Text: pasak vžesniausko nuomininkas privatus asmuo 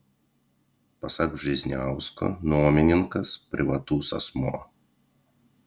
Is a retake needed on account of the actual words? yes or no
no